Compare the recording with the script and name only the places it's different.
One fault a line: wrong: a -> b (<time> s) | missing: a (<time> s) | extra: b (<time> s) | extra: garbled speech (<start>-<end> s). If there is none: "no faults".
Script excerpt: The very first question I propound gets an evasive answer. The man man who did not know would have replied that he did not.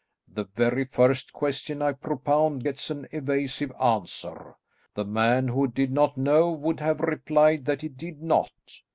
missing: man (5.5 s)